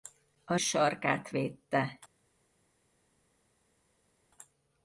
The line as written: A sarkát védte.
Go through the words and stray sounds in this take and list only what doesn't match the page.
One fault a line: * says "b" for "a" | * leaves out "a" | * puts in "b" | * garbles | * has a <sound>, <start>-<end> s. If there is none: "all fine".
all fine